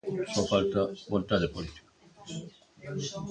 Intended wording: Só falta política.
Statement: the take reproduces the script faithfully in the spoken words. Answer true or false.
false